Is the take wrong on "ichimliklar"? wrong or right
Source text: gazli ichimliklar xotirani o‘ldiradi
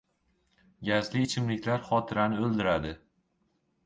right